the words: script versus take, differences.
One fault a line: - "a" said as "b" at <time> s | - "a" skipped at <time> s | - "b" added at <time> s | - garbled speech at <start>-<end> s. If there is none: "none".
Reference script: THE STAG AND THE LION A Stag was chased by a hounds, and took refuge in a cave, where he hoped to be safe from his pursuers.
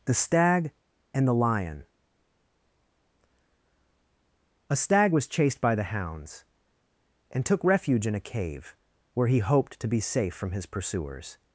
- "a" said as "the" at 5.8 s